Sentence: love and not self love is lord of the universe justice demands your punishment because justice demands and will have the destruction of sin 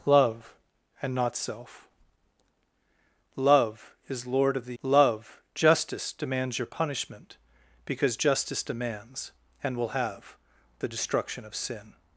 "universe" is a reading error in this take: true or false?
true